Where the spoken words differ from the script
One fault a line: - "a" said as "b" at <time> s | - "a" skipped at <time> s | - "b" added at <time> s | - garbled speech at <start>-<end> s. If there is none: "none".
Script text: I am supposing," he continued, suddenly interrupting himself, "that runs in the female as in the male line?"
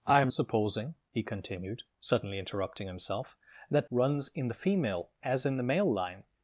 none